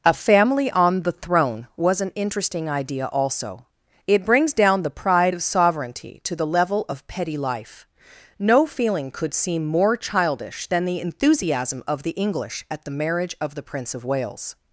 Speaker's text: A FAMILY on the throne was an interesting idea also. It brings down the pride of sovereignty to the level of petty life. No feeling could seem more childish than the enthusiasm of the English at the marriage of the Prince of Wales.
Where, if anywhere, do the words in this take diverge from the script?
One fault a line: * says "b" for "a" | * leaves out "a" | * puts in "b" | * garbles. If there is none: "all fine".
all fine